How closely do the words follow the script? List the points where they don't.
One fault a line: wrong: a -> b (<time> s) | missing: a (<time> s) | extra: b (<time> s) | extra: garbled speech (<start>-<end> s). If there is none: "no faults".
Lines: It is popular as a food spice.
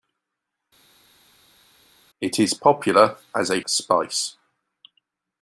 missing: food (3.6 s)